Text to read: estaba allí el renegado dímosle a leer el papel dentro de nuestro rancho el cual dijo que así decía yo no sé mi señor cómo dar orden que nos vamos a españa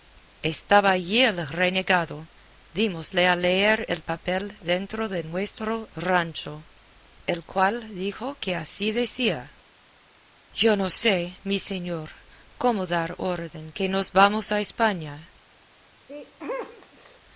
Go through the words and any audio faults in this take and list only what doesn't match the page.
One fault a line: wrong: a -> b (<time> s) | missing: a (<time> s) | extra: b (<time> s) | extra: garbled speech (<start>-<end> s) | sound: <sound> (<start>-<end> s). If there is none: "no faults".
sound: sneeze (16.1-17.2 s)